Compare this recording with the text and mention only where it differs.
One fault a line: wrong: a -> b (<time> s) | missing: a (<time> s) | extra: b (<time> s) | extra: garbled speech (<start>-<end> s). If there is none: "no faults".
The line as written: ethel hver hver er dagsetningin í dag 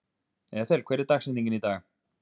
missing: hver (1.1 s)